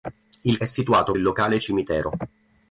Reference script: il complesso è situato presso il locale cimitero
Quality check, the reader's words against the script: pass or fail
fail